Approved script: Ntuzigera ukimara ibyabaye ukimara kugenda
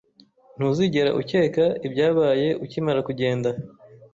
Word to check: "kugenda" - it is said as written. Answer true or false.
true